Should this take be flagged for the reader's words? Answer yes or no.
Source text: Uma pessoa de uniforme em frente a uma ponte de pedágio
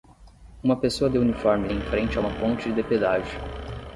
no